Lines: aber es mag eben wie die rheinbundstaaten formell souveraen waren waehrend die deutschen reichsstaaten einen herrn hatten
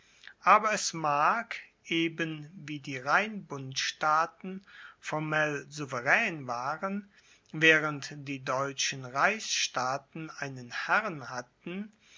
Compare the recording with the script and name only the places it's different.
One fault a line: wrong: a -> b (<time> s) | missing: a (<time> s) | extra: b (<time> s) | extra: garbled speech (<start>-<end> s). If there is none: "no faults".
no faults